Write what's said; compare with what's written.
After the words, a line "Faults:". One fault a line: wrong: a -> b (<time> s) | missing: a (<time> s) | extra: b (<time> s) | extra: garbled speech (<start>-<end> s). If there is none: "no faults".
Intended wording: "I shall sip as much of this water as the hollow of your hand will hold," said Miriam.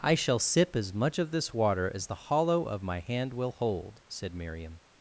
"I shall sip as much of this water as the hollow of my hand will hold," said Miriam.
Faults:
wrong: your -> my (2.8 s)